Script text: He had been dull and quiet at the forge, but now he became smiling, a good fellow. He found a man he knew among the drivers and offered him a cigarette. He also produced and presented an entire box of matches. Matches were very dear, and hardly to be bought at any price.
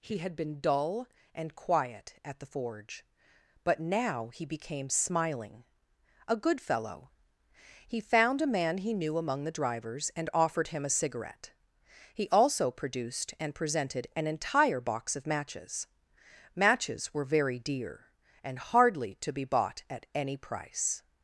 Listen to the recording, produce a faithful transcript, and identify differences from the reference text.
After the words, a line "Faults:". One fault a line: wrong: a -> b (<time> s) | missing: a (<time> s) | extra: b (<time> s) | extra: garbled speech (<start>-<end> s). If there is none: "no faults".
He had been dull and quiet at the forge, but now he became smiling, a good fellow. He found a man he knew among the drivers and offered him a cigarette. He also produced and presented an entire box of matches. Matches were very dear, and hardly to be bought at any price.
Faults:
no faults